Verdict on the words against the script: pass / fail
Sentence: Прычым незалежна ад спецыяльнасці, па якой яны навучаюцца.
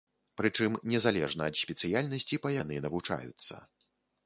fail